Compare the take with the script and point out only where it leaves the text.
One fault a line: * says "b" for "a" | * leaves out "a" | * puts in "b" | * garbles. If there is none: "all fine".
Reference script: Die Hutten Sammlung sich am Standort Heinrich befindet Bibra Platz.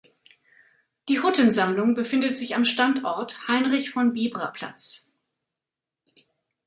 * puts in "befindet"
* says "von" for "befindet"